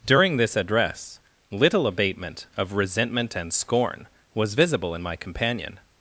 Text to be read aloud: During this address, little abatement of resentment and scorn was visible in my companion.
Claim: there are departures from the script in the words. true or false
false